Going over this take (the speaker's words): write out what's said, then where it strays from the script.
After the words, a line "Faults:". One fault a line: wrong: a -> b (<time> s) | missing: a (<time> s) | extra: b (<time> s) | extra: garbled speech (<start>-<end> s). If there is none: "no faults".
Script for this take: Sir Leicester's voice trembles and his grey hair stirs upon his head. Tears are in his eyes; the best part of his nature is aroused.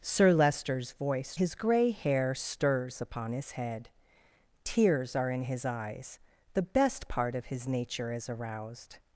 Sir Leicester's voice his grey hair stirs upon his head. Tears are in his eyes; the best part of his nature is aroused.
Faults:
missing: trembles and (1.4 s)